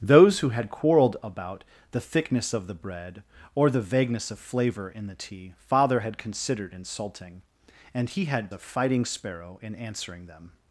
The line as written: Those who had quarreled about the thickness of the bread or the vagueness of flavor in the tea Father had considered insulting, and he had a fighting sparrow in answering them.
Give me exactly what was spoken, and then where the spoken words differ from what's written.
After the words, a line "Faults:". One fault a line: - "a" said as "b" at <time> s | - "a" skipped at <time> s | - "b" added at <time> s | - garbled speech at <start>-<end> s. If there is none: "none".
Those who had quarreled about the thickness of the bread or the vagueness of flavor in the tea Father had considered insulting, and he had a fighting sparrow in answering them.
Faults:
none